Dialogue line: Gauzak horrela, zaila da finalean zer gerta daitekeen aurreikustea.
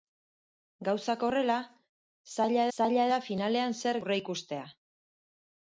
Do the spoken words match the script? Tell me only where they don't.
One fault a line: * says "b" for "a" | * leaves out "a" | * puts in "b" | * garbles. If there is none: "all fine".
* puts in "zaila"
* leaves out "gerta daitekeen"